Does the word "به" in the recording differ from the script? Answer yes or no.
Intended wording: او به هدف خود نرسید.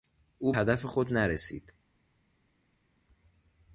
yes